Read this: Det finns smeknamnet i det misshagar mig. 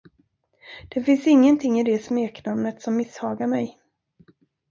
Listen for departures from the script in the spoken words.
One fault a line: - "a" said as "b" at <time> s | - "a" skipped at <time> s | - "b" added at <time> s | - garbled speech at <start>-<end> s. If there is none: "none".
- "smeknamnet" said as "ingenting" at 1.3 s
- "smeknamnet som" added at 2.0 s